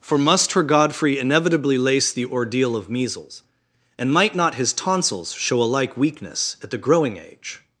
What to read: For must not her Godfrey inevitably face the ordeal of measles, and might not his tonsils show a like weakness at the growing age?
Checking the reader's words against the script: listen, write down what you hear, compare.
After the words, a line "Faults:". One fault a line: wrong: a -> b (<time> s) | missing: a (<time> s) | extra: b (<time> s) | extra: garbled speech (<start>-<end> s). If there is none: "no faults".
For must her Godfrey inevitably lace the ordeal of measles, and might not his tonsils show a like weakness at the growing age?
Faults:
missing: not (0.5 s)
wrong: face -> lace (1.8 s)